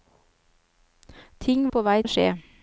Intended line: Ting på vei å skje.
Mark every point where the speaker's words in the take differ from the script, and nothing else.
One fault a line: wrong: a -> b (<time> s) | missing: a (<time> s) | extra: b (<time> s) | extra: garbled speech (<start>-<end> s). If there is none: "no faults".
no faults